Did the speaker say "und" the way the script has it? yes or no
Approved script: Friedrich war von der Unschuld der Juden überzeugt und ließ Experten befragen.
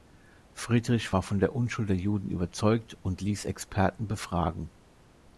yes